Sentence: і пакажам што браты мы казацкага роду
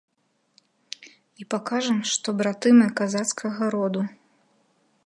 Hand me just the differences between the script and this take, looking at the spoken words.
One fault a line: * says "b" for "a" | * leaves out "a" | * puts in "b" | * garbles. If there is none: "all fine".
all fine